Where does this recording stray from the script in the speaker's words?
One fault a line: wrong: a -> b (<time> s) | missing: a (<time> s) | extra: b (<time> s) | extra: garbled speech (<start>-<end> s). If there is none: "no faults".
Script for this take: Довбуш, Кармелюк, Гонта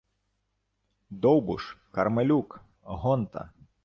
no faults